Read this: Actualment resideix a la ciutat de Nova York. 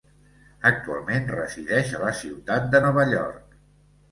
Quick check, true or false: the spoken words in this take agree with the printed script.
true